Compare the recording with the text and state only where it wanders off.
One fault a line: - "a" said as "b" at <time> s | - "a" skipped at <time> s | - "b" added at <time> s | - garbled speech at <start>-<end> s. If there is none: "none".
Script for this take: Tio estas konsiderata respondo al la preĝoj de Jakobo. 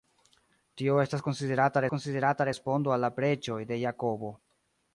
- "konsiderata" added at 1.9 s